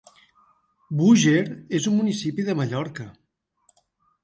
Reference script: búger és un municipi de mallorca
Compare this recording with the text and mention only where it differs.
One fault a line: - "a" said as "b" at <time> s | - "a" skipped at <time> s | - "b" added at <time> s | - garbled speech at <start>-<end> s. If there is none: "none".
none